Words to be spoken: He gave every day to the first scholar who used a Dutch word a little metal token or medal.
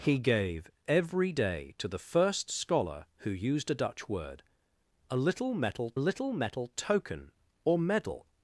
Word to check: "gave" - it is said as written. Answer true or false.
true